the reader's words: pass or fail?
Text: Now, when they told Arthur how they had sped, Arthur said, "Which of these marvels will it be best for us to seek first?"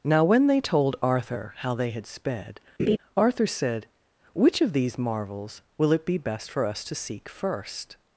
pass